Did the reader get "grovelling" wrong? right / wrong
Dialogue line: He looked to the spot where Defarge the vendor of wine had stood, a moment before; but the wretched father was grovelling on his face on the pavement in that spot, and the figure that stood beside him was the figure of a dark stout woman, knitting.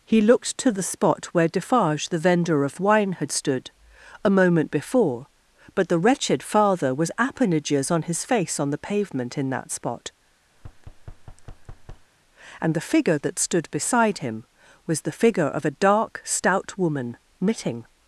wrong